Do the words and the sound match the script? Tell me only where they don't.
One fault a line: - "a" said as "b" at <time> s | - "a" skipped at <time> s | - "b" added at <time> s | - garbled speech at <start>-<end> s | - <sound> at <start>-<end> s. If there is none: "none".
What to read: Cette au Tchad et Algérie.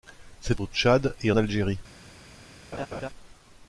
- laugh at 2.7-3.1 s